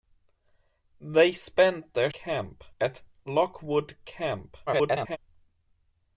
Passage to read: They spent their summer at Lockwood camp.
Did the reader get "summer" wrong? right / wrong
wrong